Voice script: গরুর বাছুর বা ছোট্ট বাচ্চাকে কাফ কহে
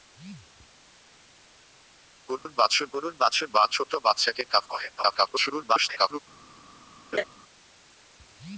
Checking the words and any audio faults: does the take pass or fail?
fail